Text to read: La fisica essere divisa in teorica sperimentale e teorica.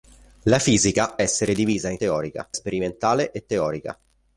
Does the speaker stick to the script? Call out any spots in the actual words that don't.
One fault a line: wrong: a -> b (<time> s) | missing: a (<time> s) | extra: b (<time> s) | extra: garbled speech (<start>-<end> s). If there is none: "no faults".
no faults